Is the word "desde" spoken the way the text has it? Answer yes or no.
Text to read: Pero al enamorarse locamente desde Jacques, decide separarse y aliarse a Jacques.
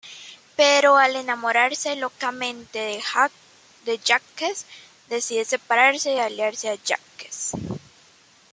no